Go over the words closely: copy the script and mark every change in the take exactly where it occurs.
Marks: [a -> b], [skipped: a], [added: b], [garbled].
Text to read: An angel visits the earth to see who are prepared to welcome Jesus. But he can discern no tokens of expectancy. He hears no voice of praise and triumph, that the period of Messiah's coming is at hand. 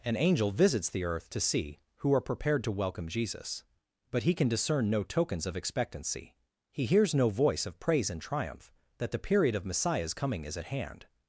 An angel visits the earth to see who are prepared to welcome Jesus. But he can discern no tokens of expectancy. He hears no voice of praise and triumph, that the period of Messiah's coming is at hand.